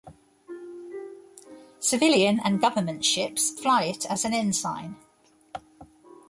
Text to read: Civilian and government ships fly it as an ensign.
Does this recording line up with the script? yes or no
yes